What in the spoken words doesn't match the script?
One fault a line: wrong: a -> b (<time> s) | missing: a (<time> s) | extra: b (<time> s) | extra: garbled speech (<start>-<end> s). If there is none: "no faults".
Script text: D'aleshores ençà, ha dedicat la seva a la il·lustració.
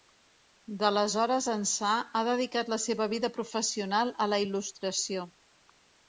extra: vida professional (3.1 s)